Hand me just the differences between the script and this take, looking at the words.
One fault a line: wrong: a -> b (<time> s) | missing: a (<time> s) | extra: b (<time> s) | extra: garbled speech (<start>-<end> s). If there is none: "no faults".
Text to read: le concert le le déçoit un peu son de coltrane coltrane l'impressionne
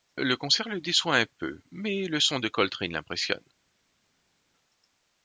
missing: le (0.8 s)
extra: mais le (1.7 s)
missing: coltrane (2.9 s)